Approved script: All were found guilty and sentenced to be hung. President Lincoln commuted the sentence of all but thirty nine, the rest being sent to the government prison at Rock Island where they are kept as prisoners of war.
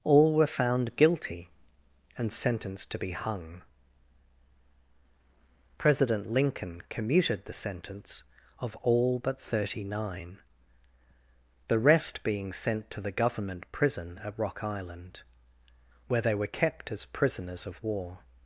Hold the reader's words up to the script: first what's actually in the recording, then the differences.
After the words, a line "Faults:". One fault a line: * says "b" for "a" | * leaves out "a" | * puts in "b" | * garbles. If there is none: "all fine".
All were found guilty and sentenced to be hung. President Lincoln commuted the sentence of all but thirty nine, the rest being sent to the government prison at Rock Island where they were kept as prisoners of war.
Faults:
* says "were" for "are"